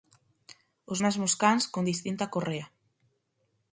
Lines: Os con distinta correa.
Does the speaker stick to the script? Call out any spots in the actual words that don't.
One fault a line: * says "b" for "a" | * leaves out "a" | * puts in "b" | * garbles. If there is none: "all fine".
* puts in "mesmos cans"